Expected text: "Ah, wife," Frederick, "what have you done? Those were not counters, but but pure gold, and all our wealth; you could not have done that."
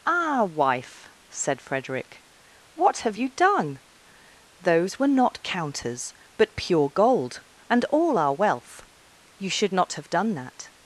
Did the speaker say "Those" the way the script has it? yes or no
yes